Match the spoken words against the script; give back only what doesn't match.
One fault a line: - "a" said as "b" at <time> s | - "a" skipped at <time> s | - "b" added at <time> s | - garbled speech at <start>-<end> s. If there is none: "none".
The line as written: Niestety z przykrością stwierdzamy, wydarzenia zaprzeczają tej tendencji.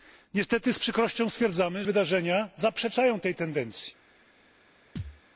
none